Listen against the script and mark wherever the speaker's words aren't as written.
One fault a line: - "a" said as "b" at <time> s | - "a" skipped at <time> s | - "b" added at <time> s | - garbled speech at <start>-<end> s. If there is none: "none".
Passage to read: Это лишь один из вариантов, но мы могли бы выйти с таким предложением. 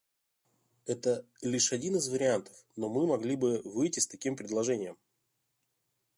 none